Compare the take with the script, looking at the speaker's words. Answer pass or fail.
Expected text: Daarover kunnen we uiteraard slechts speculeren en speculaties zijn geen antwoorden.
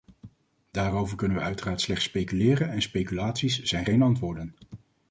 pass